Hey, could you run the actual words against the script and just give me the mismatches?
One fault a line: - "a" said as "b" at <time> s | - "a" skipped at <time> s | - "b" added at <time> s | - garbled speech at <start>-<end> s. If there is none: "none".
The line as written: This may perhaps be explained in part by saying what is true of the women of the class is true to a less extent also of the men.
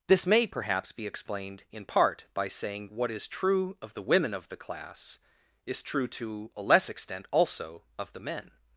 none